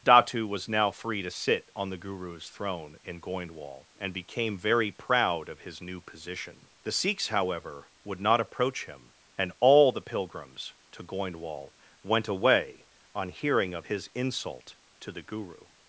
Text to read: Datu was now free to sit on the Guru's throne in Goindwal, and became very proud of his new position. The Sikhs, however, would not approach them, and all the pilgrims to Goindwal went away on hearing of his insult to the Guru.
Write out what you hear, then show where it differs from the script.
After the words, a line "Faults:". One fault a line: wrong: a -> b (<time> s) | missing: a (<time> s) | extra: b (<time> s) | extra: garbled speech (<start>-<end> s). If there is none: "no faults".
Datu was now free to sit on the Guru's throne in Goindwal, and became very proud of his new position. The Sikhs, however, would not approach him, and all the pilgrims to Goindwal went away on hearing of his insult to the Guru.
Faults:
wrong: them -> him (8.8 s)